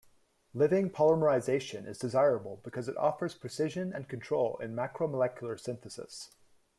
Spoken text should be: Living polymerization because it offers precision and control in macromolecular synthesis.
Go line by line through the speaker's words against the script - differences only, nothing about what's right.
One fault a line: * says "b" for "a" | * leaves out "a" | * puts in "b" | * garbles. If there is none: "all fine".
* puts in "is desirable"